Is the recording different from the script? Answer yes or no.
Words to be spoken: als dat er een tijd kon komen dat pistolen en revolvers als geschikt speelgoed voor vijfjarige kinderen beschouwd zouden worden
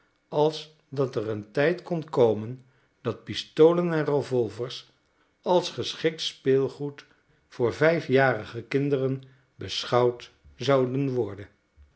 no